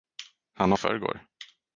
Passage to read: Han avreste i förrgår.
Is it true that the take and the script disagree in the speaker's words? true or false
true